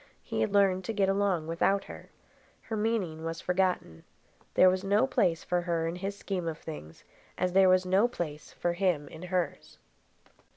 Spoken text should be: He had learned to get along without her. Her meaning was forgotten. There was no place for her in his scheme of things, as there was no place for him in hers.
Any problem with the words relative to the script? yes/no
no